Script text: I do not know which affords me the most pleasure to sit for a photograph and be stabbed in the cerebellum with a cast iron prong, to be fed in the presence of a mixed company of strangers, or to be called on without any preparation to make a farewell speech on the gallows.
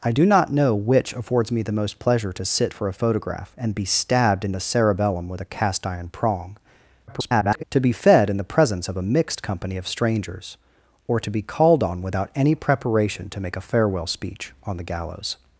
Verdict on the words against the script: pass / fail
fail